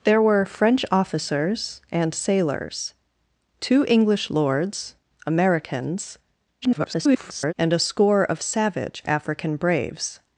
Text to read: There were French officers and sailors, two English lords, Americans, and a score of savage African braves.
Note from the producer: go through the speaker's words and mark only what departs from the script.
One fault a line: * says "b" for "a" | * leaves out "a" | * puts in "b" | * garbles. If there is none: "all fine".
* garbles